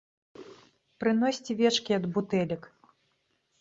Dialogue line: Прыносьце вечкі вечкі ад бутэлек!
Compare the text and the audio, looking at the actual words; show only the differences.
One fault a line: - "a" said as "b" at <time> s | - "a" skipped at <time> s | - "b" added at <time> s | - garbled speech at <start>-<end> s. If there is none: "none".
- "вечкі" skipped at 1.9 s